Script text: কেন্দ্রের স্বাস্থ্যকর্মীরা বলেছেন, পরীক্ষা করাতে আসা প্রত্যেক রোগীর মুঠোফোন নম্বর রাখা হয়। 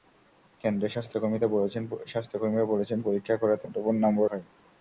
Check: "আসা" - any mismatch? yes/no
yes